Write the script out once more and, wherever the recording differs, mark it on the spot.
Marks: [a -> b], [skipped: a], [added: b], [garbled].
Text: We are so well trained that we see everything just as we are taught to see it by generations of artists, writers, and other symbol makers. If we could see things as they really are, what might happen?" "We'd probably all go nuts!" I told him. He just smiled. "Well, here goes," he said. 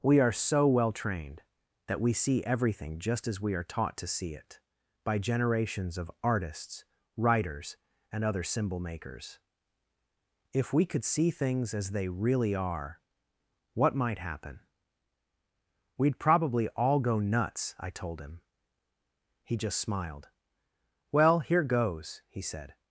We are so well trained that we see everything just as we are taught to see it by generations of artists, writers, and other symbol makers. If we could see things as they really are, what might happen?" "We'd probably all go nuts!" I told him. He just smiled. "Well, here goes," he said.